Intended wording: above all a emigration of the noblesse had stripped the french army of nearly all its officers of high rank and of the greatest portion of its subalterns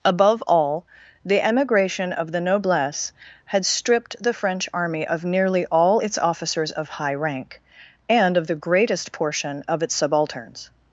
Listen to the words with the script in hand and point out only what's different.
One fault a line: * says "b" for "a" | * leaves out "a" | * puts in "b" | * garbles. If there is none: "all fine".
* says "the" for "a"